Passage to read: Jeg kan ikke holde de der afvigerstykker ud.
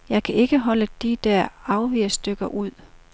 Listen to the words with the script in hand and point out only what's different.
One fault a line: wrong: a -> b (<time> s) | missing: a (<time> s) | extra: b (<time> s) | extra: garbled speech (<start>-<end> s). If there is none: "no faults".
no faults